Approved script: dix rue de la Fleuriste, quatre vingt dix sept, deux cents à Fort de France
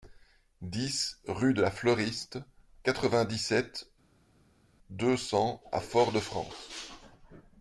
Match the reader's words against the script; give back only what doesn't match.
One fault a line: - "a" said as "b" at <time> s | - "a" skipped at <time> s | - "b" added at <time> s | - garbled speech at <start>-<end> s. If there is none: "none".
none